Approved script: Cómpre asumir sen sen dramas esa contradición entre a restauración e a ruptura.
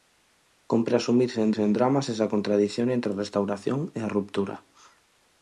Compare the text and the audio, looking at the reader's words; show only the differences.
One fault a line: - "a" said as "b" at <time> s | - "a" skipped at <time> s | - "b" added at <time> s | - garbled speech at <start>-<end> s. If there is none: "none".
none